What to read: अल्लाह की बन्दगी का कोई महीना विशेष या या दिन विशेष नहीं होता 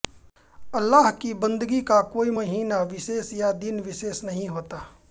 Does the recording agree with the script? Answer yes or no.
no